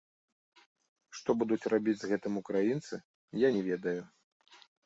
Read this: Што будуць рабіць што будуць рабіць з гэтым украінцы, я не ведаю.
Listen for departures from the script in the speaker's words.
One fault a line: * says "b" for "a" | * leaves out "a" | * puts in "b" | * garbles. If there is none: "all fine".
* leaves out "што будуць рабіць"